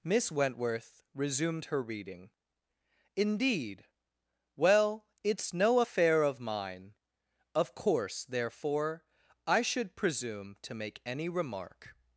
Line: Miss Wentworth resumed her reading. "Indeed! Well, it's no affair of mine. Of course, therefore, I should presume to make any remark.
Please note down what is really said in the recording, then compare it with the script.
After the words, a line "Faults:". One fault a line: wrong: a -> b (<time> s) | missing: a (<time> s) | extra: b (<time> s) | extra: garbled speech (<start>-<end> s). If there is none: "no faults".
Miss Wentworth resumed her reading. "Indeed! Well, it's no affair of mine. Of course, therefore, I should presume to make any remark.
Faults:
no faults